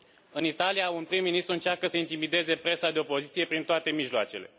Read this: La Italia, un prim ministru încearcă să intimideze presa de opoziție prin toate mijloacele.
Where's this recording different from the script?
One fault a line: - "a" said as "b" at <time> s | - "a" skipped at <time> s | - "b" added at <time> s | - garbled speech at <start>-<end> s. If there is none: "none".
- "La" said as "În" at 0.3 s